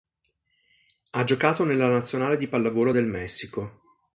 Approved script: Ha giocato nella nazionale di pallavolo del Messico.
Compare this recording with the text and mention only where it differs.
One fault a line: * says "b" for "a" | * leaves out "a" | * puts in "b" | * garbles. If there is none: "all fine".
all fine